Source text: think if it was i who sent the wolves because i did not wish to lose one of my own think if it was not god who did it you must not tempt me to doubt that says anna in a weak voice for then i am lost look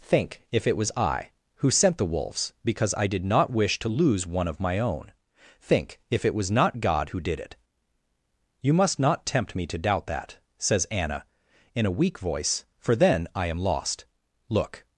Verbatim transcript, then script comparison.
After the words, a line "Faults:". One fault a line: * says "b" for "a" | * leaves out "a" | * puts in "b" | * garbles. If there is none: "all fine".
think if it was i who sent the wolves because i did not wish to lose one of my own think if it was not god who did it you must not tempt me to doubt that says anna in a weak voice for then i am lost look
Faults:
all fine